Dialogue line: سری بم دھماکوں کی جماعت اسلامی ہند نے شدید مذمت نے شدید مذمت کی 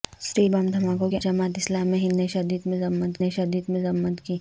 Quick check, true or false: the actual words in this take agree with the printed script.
true